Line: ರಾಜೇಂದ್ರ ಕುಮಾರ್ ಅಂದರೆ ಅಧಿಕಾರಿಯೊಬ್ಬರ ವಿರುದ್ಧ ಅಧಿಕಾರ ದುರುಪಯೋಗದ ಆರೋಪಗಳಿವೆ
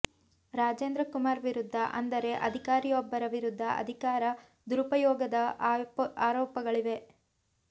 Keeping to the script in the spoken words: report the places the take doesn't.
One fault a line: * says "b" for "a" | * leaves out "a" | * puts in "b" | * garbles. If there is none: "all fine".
* puts in "ವಿರುದ್ಧ"